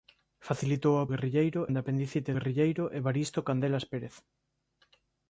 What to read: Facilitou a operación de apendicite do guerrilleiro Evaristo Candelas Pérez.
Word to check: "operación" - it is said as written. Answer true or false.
false